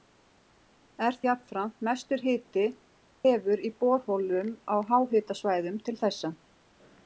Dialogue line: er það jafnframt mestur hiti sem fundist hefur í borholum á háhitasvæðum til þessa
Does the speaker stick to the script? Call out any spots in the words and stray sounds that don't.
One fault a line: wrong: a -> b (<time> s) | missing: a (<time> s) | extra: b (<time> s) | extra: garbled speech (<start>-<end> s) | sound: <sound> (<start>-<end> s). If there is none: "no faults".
missing: það (1.2 s)
missing: sem fundist (2.6 s)